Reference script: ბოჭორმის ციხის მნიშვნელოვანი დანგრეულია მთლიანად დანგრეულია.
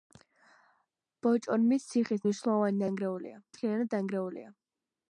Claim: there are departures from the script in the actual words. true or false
false